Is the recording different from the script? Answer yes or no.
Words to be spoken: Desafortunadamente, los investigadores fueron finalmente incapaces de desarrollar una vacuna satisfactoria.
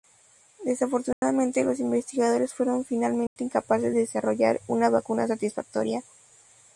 no